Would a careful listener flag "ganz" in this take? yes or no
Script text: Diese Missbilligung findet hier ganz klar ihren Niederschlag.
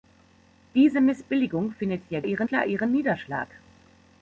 yes